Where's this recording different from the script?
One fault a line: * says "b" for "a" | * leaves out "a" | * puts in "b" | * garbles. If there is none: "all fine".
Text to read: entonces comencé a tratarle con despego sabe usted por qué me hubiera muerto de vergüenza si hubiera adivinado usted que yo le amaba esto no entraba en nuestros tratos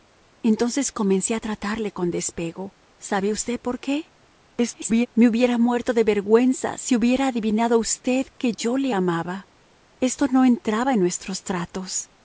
* garbles